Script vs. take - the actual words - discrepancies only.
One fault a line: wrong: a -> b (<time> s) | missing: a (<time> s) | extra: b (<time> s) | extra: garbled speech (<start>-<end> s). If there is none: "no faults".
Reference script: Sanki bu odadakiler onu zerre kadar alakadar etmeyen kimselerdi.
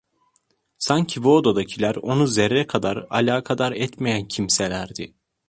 no faults